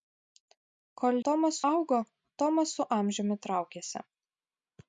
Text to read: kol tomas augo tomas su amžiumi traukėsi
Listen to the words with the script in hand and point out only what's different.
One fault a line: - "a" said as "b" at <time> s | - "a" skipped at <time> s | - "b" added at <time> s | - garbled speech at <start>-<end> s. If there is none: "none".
none